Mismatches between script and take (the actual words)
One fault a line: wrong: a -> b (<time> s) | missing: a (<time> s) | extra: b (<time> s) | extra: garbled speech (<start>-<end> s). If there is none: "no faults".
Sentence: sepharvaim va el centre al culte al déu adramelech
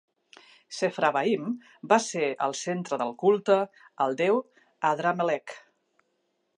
extra: ser (2.0 s)
wrong: al -> del (3.0 s)